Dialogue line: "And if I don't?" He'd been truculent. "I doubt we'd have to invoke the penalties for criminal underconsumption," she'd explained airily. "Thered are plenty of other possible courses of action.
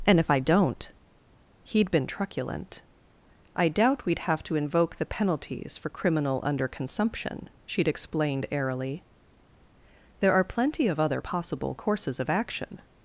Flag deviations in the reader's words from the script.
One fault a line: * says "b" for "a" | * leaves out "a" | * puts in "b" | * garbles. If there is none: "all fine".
* says "There" for "Thered"